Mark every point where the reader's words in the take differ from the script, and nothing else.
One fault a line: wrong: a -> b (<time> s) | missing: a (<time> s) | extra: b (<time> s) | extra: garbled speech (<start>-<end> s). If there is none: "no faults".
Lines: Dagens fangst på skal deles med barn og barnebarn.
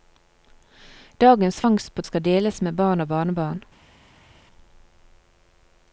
no faults